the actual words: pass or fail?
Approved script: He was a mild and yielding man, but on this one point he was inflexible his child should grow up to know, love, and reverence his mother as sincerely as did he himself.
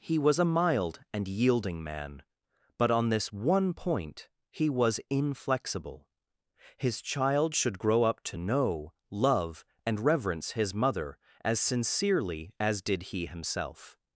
pass